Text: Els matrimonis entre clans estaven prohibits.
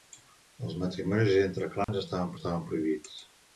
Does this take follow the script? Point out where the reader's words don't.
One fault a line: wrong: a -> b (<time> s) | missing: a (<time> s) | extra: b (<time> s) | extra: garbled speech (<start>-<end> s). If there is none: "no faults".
extra: estaven (2.3 s)